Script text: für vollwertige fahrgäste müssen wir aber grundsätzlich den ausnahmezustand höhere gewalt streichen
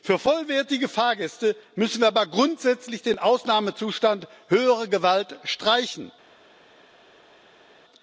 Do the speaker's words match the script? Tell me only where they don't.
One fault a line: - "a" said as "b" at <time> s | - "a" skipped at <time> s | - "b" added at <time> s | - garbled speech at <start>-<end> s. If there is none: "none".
none